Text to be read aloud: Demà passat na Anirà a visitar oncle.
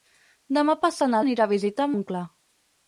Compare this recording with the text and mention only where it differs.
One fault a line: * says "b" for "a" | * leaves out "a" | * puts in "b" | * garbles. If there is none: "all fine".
all fine